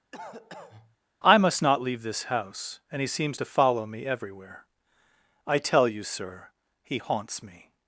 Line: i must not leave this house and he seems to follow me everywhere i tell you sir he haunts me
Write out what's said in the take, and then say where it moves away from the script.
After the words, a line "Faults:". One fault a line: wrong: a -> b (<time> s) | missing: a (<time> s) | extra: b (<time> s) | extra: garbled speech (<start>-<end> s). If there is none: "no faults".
i must not leave this house and he seems to follow me everywhere i tell you sir he haunts me
Faults:
no faults